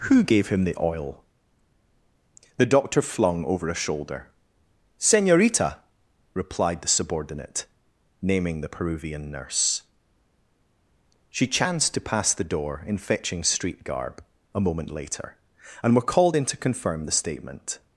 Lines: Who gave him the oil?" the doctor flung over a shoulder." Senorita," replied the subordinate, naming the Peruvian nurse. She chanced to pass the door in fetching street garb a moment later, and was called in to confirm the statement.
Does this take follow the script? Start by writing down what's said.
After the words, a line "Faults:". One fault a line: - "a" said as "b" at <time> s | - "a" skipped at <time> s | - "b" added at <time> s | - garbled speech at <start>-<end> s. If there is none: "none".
Who gave him the oil?" the doctor flung over a shoulder." Senorita," replied the subordinate, naming the Peruvian nurse. She chanced to pass the door in fetching street garb a moment later, and were called in to confirm the statement.
Faults:
- "was" said as "were" at 16.0 s